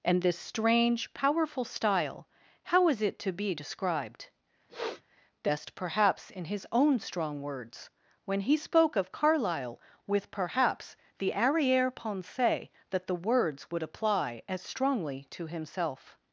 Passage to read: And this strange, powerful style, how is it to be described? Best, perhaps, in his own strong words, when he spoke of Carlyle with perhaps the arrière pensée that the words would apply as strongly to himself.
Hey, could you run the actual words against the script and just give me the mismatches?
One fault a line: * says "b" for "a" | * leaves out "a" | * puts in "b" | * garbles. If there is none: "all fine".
all fine